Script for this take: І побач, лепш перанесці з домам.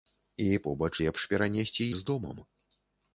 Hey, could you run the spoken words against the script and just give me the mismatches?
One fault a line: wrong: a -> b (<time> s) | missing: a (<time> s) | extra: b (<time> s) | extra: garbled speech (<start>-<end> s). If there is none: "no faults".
no faults